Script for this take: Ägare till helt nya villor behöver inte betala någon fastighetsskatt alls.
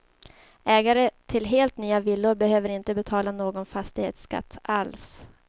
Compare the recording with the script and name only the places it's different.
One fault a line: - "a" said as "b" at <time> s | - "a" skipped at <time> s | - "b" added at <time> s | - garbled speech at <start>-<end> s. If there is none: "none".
none